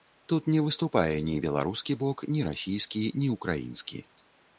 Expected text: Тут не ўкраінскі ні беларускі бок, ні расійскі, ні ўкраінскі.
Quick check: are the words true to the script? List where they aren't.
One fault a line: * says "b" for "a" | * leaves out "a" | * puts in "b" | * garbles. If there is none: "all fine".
* says "выступае" for "ўкраінскі"